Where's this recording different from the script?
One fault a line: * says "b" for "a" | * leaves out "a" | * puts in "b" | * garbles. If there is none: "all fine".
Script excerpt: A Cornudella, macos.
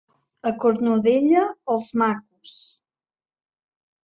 * puts in "els"